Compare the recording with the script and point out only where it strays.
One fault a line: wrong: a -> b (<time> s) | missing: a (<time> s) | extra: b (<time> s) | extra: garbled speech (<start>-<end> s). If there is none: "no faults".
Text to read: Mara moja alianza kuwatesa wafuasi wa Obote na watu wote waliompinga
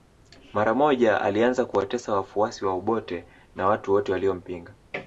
no faults